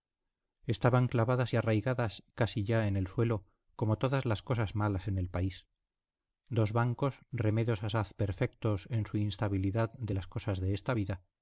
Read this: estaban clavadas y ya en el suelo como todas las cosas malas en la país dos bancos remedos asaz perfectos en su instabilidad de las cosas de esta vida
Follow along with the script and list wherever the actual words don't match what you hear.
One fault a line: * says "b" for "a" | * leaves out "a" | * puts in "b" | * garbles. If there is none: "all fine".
* puts in "arraigadas casi"
* says "el" for "la"